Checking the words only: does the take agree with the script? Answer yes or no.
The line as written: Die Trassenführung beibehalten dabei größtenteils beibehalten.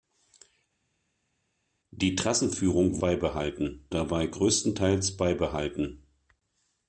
yes